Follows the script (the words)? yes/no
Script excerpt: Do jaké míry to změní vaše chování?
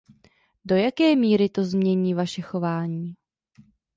yes